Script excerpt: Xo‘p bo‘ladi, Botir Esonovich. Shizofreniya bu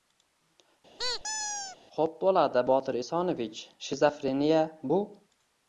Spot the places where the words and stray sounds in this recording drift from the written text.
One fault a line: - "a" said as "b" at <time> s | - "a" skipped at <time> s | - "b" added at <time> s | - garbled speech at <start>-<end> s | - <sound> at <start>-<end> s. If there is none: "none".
- squeak at 1.0-1.8 s